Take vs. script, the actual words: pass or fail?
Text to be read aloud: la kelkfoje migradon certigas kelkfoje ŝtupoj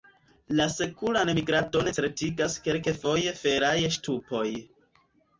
fail